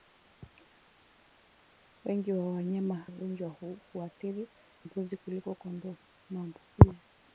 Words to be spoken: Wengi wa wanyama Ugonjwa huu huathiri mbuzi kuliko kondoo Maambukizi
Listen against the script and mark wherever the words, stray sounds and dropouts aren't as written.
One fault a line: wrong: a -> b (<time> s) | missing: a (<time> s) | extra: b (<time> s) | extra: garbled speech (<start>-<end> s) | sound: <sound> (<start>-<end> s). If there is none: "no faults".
no faults